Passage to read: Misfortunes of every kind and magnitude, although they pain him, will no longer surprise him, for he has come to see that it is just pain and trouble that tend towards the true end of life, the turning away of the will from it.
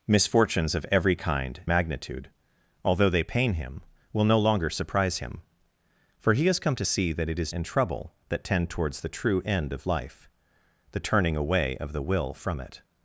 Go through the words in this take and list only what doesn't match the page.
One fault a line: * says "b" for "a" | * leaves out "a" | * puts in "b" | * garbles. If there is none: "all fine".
* leaves out "and"
* leaves out "just pain"